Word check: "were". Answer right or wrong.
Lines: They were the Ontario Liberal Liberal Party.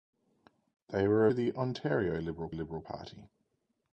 right